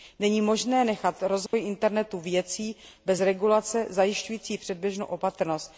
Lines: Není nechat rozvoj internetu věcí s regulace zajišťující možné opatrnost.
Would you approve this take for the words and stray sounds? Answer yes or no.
no